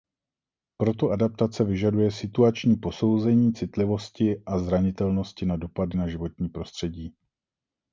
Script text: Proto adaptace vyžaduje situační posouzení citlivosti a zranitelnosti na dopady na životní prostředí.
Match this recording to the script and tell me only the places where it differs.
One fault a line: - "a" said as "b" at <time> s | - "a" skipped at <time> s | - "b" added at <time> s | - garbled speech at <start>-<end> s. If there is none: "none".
none